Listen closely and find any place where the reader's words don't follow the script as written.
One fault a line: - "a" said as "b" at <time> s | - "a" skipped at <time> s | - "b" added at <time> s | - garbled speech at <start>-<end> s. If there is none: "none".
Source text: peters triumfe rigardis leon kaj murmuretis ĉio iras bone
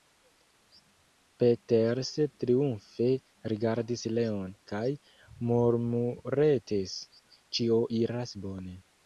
none